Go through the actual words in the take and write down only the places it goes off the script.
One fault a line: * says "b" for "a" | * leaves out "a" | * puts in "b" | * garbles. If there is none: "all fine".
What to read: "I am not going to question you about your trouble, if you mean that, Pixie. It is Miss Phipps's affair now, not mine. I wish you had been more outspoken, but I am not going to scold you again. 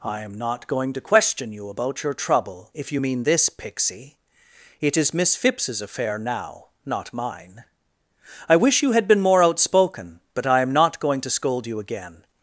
* says "this" for "that"